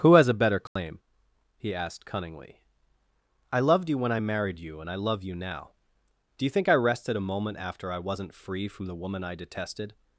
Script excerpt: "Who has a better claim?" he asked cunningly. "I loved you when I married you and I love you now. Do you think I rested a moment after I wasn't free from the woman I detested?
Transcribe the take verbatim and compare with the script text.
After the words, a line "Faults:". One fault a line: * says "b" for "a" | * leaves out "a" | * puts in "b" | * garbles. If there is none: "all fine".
"Who has a better claim?" he asked cunningly. "I loved you when I married you and I love you now. Do you think I rested a moment after I wasn't free from the woman I detested?
Faults:
all fine